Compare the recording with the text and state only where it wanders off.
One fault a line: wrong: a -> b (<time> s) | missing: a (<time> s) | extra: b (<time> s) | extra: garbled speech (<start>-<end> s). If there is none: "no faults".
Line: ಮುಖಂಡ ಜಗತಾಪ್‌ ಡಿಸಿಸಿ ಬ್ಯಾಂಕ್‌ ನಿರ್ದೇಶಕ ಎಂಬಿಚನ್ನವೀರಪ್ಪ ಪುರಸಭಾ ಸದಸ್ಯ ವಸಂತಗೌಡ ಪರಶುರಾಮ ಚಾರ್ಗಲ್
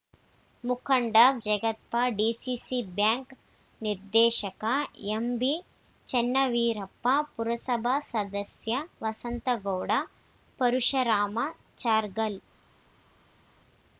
no faults